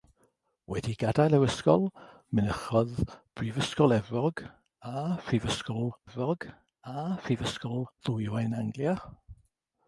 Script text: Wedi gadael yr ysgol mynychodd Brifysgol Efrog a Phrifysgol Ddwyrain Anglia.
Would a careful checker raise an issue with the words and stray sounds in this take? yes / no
yes